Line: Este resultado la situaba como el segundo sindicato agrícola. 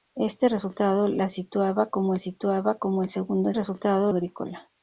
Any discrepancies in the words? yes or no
yes